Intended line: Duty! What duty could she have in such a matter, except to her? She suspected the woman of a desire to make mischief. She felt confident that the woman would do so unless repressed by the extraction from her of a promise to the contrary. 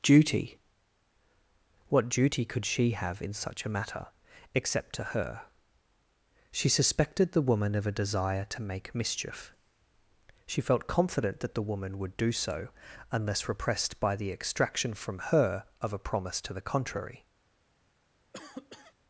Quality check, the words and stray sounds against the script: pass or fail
fail